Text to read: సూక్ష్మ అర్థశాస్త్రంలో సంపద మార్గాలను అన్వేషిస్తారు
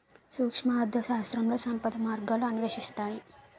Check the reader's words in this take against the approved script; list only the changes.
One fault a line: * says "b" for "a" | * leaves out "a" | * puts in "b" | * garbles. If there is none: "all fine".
all fine